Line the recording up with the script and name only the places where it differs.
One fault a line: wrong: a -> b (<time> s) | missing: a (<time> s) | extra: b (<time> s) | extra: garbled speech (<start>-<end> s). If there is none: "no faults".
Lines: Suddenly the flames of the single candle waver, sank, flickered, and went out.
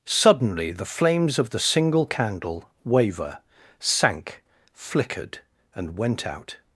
no faults